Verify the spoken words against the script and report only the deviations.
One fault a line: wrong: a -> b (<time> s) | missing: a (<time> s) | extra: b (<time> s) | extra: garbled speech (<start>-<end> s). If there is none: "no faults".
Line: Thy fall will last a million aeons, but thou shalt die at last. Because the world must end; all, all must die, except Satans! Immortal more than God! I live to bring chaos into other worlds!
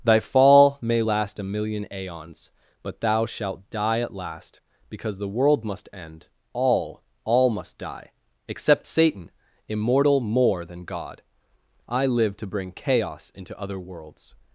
wrong: will -> may (0.8 s)
wrong: Satans -> Satan (8.9 s)